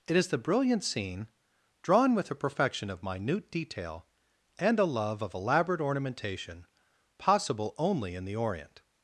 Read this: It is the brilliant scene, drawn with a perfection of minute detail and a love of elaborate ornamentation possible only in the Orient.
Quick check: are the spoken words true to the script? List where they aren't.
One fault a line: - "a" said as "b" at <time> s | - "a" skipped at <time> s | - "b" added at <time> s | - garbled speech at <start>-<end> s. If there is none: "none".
none